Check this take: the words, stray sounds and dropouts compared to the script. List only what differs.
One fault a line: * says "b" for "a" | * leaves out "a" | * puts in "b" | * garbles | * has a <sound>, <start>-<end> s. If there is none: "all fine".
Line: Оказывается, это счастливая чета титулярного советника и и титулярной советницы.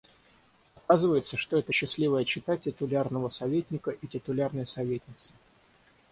* puts in "что"
* leaves out "и"